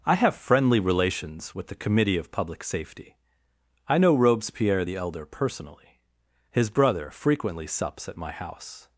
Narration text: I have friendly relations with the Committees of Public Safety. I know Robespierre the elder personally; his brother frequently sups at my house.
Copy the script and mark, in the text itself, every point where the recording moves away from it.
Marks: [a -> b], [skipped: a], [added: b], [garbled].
I have friendly relations with the [Committees -> Committee] of Public Safety. I know Robespierre the elder personally; his brother frequently sups at my house.